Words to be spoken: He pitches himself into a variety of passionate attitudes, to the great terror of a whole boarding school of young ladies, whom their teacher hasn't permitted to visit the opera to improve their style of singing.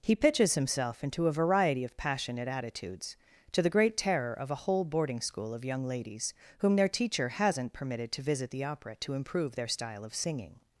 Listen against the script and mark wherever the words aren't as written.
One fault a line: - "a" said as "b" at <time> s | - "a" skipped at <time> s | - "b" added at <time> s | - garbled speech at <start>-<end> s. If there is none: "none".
none